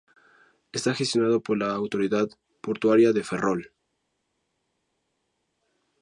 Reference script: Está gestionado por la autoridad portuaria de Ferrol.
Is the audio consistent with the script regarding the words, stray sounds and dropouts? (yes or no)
yes